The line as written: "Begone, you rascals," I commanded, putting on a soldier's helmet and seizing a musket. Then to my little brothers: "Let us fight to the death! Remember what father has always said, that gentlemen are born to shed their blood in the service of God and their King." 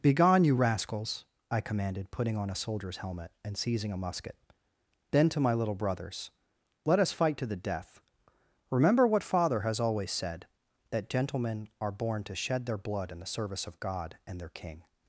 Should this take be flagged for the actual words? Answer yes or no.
no